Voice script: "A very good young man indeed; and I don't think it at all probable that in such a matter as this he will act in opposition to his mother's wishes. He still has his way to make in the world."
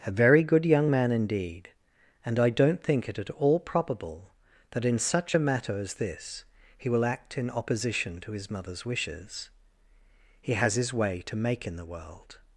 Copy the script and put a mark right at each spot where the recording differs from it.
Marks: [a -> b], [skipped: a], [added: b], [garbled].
"A very good young man indeed; and I don't think it at all probable that in such a matter as this he will act in opposition to his mother's wishes. He [skipped: still] has his way to make in the world."